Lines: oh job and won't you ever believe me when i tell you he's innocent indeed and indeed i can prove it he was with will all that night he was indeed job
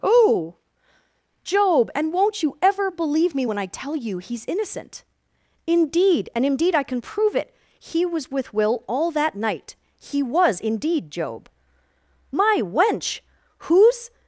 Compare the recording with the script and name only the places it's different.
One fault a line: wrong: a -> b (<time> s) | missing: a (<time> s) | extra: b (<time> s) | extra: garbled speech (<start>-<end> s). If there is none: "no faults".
extra: my wench whose (12.3 s)